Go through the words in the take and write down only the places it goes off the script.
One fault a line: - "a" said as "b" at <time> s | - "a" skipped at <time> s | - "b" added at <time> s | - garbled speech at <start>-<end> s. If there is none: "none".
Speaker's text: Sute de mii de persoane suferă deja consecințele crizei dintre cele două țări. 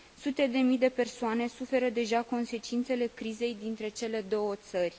none